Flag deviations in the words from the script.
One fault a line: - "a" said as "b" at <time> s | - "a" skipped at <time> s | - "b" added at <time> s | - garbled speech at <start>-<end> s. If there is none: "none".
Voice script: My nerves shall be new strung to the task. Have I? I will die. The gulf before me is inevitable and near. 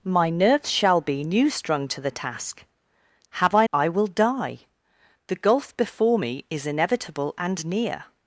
none